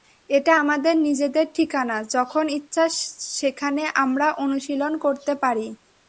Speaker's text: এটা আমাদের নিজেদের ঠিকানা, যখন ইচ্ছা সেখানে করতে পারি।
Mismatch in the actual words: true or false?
true